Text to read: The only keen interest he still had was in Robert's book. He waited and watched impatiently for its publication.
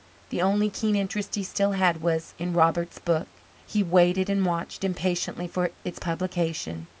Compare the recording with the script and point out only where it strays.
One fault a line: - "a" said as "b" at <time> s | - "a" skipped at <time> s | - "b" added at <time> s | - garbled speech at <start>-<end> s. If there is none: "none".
none